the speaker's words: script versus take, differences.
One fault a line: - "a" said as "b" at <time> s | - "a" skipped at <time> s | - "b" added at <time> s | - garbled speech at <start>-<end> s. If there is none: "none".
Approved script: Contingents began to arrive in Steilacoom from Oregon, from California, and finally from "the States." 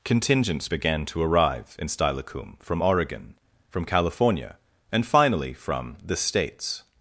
none